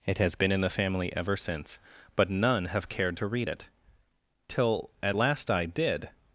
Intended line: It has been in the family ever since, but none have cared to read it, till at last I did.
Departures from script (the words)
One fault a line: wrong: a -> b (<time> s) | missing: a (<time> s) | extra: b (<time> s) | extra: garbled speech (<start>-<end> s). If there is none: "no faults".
no faults